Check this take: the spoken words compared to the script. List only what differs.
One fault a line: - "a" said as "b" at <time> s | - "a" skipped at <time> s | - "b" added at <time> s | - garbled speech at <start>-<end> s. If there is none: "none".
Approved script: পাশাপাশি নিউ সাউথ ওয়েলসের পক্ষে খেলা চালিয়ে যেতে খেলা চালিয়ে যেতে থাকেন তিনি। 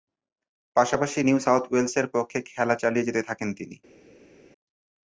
- "খেলা চালিয়ে যেতে" skipped at 3.2 s